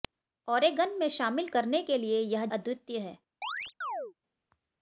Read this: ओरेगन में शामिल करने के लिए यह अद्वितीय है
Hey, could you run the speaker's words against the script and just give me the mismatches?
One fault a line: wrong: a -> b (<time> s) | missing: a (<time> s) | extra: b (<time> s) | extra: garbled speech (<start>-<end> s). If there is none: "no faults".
no faults